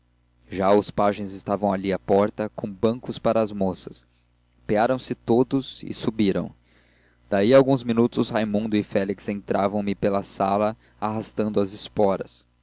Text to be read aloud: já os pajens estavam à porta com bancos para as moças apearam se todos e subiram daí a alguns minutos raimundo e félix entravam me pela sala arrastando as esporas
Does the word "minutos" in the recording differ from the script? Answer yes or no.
no